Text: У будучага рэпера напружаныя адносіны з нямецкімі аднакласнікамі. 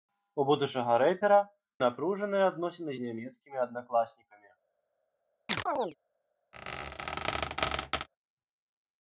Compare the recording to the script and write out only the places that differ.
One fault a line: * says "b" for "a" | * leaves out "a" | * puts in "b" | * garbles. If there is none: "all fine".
all fine